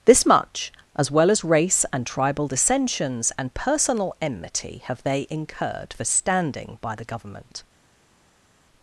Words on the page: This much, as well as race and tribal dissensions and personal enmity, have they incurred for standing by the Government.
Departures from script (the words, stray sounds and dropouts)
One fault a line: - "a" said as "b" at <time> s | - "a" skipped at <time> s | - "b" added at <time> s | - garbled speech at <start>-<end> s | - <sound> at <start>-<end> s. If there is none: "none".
none